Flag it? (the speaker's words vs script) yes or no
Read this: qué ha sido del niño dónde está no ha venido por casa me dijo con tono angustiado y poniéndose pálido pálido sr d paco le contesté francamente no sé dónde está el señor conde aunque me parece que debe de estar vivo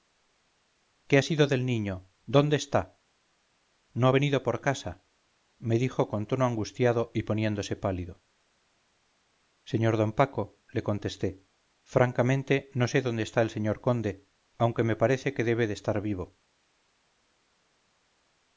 yes